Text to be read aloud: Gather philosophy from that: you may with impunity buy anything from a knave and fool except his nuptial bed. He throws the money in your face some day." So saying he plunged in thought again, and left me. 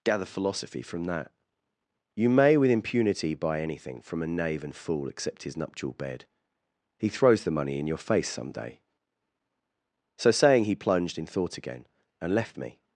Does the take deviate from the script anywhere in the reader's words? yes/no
no